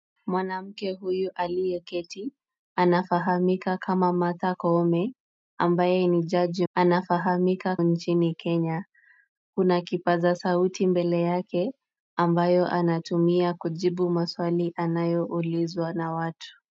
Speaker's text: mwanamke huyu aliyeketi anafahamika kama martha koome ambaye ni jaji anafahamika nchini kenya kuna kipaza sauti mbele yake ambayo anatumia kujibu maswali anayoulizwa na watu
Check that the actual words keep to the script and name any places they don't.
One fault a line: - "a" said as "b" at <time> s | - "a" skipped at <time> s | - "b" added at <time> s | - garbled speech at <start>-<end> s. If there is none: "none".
none